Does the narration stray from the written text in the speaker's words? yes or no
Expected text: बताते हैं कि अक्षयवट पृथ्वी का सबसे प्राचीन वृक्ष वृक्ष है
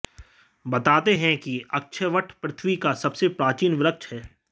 yes